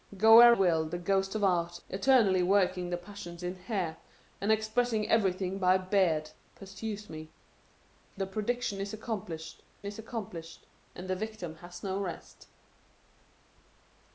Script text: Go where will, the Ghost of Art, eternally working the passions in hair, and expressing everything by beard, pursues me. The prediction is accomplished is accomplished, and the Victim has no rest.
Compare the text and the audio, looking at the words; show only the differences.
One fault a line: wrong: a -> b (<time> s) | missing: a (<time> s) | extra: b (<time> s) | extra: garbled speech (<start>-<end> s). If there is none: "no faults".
no faults